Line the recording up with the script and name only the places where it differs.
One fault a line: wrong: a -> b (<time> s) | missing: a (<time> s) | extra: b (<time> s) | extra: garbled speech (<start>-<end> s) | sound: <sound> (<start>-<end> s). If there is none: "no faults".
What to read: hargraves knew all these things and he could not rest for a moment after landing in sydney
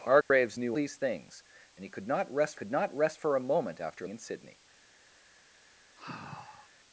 sound: dropout (0.2-0.3 s)
missing: all (0.8 s)
extra: could not rest (2.5 s)
missing: landing (4.1 s)
sound: sigh (6.0-6.7 s)